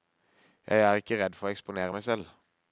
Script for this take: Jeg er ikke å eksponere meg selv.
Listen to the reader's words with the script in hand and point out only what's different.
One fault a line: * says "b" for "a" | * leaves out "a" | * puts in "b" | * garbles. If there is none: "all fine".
* puts in "redd for"